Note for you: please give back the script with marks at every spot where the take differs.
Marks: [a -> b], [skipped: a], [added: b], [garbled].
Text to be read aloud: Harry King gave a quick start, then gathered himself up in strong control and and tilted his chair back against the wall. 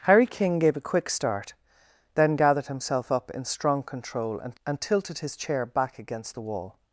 Harry King gave a quick start, then gathered himself up in strong control and and tilted his chair back against the wall.